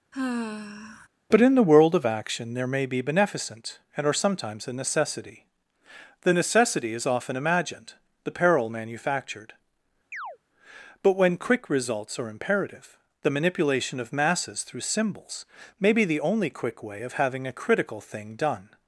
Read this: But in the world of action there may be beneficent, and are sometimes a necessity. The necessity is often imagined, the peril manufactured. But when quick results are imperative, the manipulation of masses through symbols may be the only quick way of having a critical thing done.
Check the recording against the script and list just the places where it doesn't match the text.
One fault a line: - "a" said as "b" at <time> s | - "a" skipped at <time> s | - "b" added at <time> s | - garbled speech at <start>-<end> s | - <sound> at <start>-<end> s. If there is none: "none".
- sigh at 0.1-1.1 s
- chirp at 10.1-10.4 s